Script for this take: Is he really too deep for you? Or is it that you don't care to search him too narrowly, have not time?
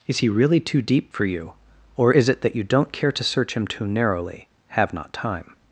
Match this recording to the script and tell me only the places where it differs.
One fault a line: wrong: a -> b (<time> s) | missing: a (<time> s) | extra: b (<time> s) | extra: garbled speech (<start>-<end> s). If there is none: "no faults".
no faults